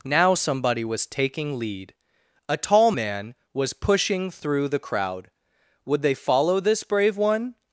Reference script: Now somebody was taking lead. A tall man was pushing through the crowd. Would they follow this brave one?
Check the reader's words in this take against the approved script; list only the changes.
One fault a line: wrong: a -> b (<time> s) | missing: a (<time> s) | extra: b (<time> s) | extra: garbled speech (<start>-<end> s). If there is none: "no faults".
no faults